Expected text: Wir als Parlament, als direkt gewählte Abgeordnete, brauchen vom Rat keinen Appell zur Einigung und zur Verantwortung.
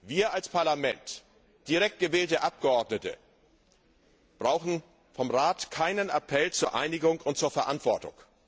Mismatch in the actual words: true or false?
true